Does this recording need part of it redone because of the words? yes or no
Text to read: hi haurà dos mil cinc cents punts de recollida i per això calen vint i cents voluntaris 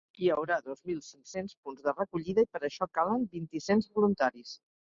no